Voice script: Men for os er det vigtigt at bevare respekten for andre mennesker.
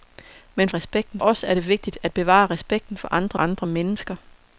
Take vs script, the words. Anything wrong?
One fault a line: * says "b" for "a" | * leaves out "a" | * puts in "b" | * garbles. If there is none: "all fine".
* says "respekten" for "for"
* puts in "andre"